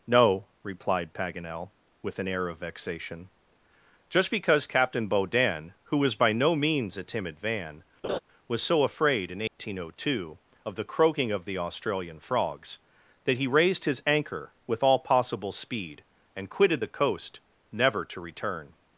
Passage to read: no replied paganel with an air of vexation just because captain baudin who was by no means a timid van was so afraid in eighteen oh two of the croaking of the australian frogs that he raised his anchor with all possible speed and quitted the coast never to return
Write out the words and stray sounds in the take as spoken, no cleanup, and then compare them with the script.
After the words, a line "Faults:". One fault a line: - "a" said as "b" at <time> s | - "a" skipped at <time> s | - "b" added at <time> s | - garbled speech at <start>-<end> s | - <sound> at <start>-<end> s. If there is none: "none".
no replied paganel with an air of vexation just because captain baudin who was by no means a timid van was so afraid in eighteen oh two of the croaking of the australian frogs that he raised his anchor with all possible speed and quitted the coast never to return
Faults:
- laugh at 8.0-8.2 s
- dropout at 9.5-9.6 s